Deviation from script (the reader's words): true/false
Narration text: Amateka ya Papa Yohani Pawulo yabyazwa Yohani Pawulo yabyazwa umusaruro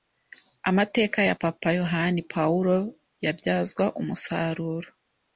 true